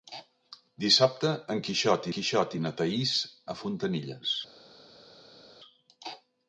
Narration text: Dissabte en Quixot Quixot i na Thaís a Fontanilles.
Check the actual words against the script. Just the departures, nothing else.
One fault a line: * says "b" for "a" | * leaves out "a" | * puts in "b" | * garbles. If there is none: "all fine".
all fine